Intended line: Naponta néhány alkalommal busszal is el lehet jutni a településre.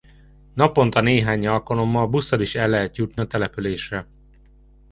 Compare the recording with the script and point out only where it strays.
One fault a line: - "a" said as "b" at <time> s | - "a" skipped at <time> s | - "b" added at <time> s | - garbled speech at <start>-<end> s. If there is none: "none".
none